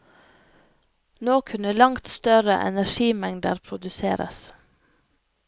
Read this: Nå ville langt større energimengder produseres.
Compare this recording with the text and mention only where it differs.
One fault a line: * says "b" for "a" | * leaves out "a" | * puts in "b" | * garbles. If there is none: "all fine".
* says "kunne" for "ville"